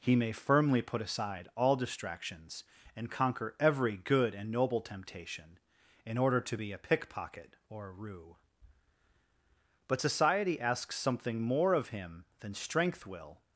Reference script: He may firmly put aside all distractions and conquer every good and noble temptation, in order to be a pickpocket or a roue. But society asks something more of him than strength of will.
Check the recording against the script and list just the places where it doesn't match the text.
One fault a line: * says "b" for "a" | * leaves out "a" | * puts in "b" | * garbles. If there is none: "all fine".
* leaves out "of"